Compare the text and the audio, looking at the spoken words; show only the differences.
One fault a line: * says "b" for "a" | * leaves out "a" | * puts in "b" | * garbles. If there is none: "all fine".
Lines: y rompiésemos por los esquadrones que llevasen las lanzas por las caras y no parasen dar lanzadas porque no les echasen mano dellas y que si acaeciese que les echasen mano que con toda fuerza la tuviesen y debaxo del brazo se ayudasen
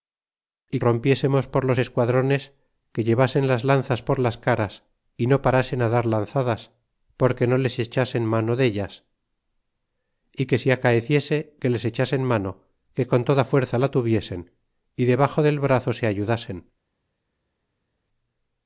all fine